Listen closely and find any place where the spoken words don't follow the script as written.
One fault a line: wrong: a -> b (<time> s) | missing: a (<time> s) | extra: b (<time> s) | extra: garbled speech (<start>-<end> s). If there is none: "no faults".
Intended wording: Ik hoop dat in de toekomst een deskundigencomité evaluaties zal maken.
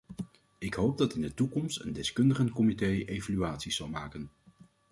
no faults